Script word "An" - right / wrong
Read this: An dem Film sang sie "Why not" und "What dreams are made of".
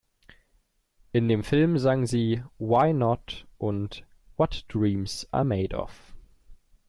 wrong